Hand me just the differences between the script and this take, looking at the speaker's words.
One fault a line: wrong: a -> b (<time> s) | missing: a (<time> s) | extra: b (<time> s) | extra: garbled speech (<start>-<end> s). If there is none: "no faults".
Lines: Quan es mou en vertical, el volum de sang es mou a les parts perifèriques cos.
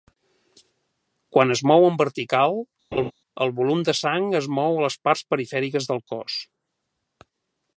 extra: del (5.9 s)